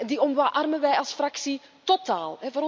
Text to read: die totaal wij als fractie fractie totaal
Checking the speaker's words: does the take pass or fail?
fail